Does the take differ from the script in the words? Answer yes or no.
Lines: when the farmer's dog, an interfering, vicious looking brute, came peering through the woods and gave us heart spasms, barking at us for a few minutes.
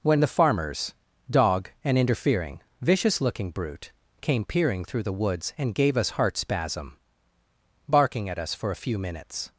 yes